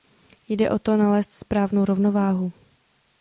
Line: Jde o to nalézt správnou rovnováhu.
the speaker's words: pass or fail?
pass